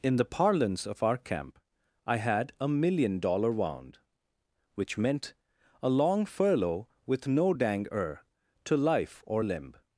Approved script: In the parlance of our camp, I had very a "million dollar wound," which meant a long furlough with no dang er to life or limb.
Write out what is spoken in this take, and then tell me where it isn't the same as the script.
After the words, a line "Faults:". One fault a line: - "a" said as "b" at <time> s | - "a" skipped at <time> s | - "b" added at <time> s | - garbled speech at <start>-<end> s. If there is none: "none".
In the parlance of our camp, I had a "million dollar wound," which meant a long furlough with no dang er to life or limb.
Faults:
- "very" skipped at 2.5 s